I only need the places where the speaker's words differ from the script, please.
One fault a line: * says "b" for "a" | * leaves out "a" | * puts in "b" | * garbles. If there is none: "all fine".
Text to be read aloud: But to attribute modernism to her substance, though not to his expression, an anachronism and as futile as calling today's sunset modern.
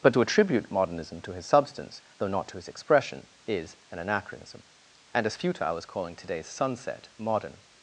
* says "his" for "her"
* puts in "is"